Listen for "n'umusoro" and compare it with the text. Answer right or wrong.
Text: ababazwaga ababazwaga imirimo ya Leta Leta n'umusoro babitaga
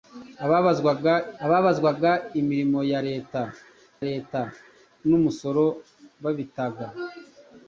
right